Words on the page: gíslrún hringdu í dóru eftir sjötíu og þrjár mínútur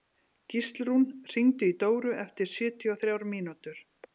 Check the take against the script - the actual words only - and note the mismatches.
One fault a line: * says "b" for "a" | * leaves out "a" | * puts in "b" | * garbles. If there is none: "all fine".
all fine